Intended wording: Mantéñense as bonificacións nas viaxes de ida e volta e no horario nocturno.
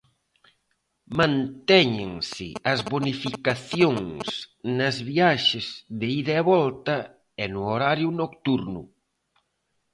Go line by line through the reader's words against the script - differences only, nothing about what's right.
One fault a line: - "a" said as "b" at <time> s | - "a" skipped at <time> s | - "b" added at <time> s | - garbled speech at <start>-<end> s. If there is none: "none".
none